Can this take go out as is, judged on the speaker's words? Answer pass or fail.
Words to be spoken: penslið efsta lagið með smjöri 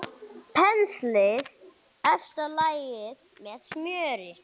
pass